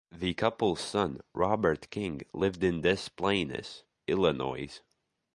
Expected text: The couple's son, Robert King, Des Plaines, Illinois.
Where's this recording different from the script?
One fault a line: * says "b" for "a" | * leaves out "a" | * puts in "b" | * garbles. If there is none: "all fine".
* puts in "lived in"